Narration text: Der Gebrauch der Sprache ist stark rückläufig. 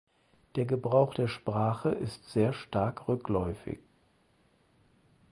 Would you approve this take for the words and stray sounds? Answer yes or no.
no